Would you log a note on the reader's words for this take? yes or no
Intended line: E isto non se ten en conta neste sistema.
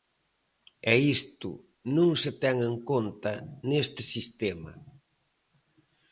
no